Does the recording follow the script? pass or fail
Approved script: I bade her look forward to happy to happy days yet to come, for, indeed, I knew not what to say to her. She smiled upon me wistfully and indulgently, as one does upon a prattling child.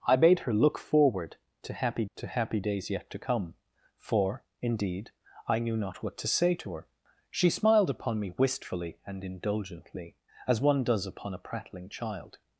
pass